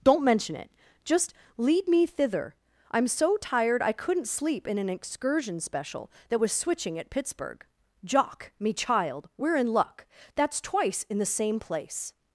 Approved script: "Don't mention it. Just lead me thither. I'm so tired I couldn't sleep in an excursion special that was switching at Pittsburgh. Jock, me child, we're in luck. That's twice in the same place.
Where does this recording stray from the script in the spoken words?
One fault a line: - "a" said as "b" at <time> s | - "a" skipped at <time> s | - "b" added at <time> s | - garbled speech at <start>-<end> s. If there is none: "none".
none